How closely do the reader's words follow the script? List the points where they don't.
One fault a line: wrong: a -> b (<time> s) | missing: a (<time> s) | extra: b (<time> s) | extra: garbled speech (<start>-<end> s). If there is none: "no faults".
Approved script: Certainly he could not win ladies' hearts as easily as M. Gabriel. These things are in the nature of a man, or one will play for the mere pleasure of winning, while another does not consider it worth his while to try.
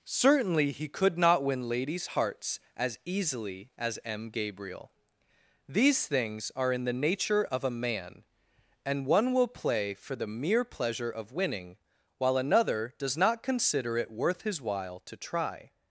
wrong: or -> and (8.8 s)